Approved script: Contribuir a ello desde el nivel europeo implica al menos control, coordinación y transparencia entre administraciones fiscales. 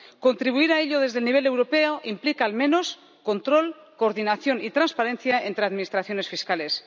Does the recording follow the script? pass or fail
pass